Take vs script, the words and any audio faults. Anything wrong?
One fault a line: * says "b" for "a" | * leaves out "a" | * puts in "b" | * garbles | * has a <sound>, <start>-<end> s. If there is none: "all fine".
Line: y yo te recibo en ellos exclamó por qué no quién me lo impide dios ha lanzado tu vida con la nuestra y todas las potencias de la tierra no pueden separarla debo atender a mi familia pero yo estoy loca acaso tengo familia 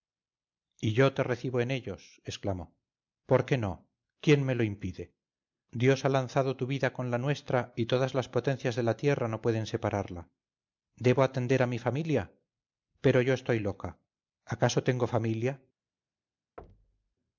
* has a thud, 16.6-17.1 s